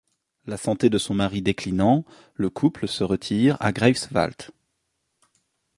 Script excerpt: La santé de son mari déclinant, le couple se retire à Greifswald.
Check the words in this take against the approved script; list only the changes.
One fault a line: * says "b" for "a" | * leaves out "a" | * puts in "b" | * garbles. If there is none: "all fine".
all fine